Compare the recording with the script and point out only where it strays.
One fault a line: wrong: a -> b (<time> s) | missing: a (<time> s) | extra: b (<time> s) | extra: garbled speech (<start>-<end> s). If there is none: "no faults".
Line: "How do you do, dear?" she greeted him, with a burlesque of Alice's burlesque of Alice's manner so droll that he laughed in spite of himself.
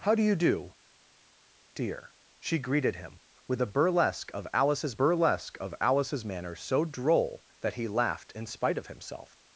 no faults